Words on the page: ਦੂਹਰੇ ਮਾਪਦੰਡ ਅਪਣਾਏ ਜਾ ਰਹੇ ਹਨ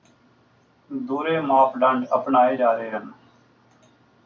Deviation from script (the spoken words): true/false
false